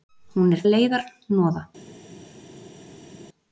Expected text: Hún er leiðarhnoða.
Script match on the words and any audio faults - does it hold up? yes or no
yes